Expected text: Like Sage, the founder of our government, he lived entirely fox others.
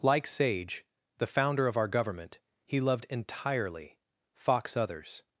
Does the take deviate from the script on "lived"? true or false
true